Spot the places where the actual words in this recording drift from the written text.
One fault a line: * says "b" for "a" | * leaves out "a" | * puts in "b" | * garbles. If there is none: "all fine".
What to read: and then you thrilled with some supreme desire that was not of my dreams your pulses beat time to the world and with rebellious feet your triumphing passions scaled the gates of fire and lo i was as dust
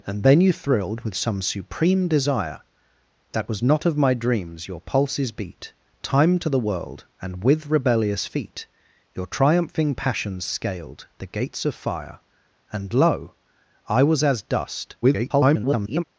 * garbles